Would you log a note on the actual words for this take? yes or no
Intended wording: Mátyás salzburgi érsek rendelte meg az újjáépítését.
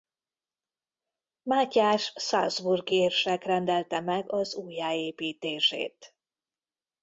no